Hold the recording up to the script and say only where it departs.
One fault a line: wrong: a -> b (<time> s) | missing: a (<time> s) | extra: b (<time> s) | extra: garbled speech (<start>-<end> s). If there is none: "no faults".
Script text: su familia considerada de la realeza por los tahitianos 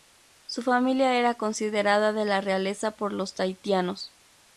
extra: era (1.2 s)